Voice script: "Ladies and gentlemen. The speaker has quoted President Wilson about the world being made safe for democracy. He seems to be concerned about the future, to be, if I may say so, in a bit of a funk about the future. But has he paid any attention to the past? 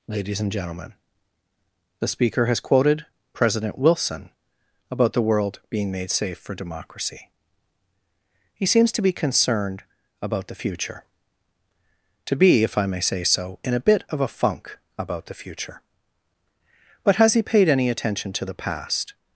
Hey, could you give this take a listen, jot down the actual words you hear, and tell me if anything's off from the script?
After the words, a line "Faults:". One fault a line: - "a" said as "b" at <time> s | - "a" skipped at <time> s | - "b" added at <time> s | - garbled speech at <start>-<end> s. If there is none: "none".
"Ladies and gentlemen. The speaker has quoted President Wilson about the world being made safe for democracy. He seems to be concerned about the future, to be, if I may say so, in a bit of a funk about the future. But has he paid any attention to the past?
Faults:
none